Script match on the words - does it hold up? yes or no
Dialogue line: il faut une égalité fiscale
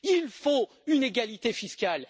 yes